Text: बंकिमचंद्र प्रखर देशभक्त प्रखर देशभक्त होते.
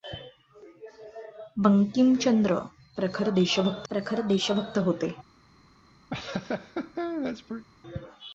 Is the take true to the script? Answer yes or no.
yes